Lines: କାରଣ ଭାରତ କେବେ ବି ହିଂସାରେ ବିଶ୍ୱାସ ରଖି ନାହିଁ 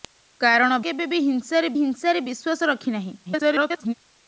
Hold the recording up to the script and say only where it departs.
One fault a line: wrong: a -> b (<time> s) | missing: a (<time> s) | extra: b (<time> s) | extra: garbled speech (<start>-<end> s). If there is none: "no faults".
missing: ଭାରତ (0.8 s)
extra: ହିଂସାରେ (1.8 s)
extra: garbled speech (3.3-3.9 s)